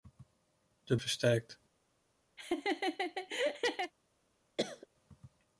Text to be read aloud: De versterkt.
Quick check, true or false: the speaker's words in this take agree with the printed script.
true